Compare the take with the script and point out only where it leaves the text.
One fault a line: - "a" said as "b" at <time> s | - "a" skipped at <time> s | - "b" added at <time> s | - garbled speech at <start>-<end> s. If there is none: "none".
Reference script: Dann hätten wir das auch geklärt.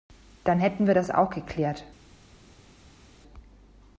none